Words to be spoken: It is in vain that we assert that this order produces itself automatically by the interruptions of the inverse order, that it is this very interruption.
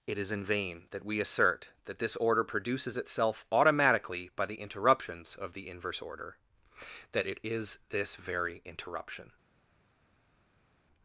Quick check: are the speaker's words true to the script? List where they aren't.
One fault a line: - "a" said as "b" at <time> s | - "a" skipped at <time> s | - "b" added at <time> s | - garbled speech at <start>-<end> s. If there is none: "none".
none